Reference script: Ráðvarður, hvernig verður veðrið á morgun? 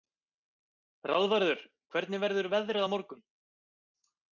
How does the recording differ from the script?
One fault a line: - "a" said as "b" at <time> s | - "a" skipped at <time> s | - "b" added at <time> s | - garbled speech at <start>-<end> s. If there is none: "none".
none